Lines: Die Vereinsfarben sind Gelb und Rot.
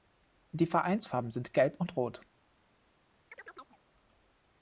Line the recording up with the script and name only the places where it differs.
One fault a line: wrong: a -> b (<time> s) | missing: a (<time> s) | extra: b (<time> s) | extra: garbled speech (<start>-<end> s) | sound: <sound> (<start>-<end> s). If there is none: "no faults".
sound: chirp (3.3-3.8 s)